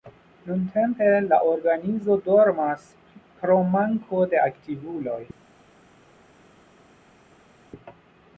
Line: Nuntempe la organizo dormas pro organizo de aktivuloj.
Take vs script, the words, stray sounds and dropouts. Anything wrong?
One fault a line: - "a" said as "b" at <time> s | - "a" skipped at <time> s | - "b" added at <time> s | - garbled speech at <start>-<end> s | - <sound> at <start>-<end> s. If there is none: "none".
- "organizo" said as "manko" at 3.8 s